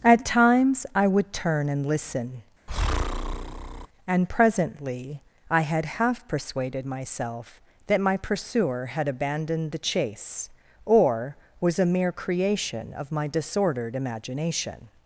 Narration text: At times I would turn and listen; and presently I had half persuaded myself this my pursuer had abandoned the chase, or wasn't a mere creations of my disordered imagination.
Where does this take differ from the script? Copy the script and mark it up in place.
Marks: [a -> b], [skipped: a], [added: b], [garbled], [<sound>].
At times I would turn and listen; [breath] and presently I had half persuaded myself [this -> that] my pursuer had abandoned the chase, or [wasn't -> was] a mere [creations -> creation] of my disordered imagination.